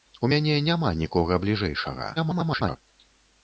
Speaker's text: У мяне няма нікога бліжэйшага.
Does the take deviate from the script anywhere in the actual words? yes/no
yes